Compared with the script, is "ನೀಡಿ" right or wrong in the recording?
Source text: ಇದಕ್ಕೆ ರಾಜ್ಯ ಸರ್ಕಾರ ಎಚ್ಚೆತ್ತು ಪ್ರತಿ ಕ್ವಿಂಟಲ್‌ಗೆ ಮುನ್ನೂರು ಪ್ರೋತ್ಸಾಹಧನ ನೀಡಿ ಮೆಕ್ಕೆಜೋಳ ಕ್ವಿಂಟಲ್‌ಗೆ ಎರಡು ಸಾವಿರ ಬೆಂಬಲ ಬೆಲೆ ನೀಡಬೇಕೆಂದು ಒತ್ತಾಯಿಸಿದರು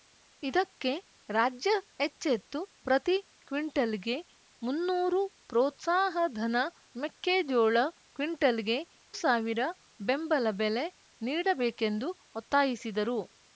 wrong